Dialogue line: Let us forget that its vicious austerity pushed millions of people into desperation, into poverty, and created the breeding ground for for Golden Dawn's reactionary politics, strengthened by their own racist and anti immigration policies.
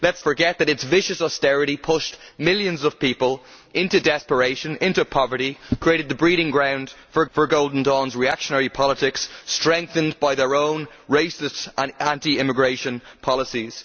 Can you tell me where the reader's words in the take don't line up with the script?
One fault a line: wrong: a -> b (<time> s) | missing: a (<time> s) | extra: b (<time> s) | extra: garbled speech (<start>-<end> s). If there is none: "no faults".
no faults